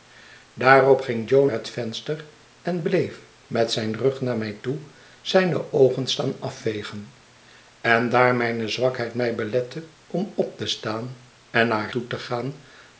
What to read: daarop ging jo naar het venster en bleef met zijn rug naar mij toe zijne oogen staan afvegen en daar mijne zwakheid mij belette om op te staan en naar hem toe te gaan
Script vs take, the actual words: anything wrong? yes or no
yes